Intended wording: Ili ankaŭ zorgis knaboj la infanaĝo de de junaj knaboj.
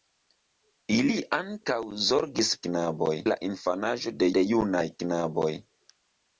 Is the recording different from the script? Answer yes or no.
no